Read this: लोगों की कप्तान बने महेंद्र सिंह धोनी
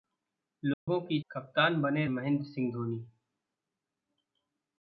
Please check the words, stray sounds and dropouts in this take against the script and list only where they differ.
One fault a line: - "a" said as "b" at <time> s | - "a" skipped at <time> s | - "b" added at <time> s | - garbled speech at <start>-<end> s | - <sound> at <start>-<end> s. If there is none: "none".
- dropout at 0.7-0.9 s